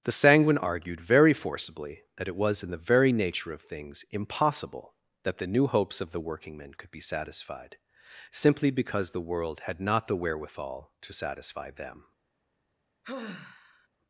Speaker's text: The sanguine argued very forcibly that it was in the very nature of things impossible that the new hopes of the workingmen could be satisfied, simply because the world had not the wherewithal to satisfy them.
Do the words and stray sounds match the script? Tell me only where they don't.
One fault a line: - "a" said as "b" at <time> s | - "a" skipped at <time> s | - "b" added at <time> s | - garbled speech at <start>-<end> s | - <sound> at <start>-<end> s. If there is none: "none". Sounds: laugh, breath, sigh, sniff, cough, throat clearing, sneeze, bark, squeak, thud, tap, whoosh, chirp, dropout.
- sigh at 13.0-13.9 s